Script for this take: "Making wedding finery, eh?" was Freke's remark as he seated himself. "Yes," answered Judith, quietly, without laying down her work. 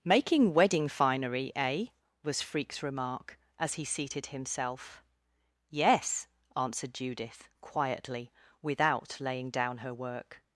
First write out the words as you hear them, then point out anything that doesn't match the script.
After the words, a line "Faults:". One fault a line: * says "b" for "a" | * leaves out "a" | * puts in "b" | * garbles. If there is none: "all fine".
"Making wedding finery, eh?" was Freke's remark as he seated himself. "Yes," answered Judith, quietly, without laying down her work.
Faults:
all fine